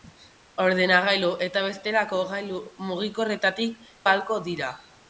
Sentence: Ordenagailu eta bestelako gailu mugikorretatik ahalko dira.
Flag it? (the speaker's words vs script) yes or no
no